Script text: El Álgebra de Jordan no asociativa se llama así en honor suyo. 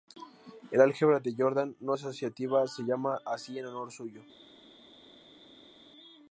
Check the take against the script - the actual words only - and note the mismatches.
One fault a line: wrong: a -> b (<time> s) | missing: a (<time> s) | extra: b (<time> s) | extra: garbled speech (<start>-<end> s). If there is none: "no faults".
no faults